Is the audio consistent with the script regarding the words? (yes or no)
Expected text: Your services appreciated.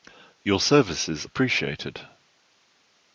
yes